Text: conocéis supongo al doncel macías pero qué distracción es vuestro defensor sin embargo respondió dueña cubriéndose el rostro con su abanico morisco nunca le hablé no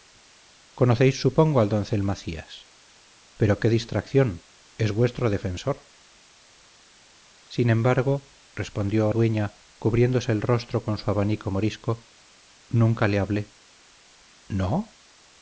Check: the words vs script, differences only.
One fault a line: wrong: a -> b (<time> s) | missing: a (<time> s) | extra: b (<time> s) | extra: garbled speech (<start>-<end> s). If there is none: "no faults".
no faults